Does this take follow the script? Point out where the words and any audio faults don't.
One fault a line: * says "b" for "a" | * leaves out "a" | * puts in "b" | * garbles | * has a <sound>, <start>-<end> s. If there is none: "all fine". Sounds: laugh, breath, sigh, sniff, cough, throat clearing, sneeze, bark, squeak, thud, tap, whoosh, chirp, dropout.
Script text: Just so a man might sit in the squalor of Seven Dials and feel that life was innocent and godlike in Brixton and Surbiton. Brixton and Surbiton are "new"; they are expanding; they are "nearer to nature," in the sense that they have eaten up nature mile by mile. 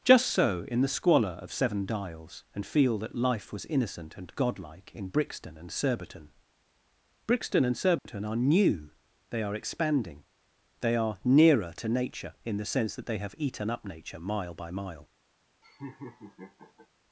* leaves out "a man might sit"
* has a dropout, 8.0-8.1 s
* has a laugh, 15.6-16.9 s